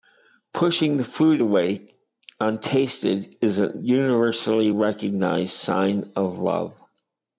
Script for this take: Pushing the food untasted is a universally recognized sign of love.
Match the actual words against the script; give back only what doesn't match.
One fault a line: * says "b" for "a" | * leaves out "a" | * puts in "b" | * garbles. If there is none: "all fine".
* puts in "away"